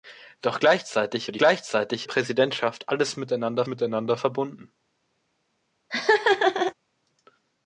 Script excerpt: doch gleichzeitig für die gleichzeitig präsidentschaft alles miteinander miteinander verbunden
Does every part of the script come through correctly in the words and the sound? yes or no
no